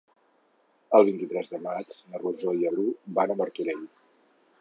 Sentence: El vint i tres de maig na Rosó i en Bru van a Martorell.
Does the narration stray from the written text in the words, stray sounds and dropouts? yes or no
yes